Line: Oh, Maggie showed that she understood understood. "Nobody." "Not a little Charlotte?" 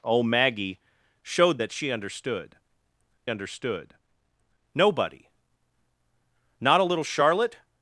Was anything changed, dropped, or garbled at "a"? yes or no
no